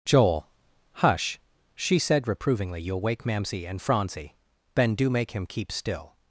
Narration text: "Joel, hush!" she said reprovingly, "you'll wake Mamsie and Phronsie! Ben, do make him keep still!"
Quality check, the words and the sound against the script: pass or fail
pass